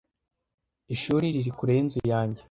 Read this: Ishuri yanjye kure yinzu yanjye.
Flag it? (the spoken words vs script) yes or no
yes